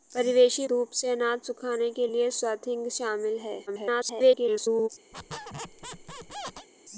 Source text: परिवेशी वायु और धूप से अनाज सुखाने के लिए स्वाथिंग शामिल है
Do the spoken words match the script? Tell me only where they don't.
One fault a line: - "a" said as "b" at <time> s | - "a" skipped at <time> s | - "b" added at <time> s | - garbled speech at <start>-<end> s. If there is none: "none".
- "वायु और" skipped at 0.7 s
- garbled speech at 3.7-4.9 s